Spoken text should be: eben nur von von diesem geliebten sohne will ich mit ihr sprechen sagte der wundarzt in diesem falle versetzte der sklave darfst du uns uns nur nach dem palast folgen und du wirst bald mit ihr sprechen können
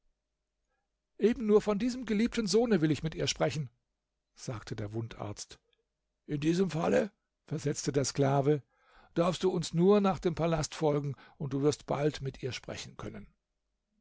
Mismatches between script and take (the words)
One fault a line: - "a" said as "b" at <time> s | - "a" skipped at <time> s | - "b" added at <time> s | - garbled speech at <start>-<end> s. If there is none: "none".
- "von" skipped at 1.8 s
- "uns" skipped at 9.8 s